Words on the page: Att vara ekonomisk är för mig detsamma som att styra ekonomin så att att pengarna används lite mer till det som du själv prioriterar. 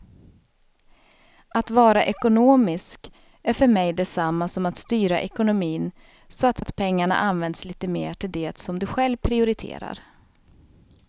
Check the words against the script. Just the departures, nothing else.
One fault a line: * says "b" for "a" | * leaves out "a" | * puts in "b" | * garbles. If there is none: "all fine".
all fine